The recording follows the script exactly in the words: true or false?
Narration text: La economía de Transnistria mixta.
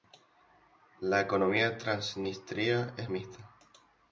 false